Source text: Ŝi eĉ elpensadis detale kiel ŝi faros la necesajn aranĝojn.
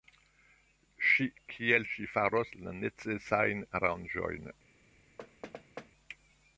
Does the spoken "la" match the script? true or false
true